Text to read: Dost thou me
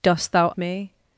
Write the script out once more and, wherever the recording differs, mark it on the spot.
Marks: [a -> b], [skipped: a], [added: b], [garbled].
Dost thou me